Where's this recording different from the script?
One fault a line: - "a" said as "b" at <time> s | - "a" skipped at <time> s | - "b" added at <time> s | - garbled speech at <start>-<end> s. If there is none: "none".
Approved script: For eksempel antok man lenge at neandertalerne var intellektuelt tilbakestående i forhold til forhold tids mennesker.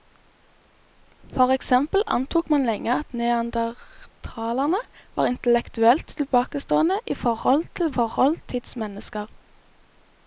none